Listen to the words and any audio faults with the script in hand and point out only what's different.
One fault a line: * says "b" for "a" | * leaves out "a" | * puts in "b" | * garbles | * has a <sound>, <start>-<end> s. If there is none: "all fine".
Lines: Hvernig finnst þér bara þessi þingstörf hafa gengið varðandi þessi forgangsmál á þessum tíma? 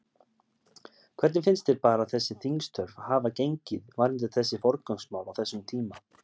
all fine